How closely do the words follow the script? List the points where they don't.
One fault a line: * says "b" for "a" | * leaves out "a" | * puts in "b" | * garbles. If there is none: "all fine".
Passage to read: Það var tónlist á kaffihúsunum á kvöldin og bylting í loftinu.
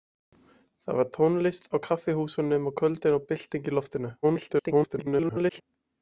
* garbles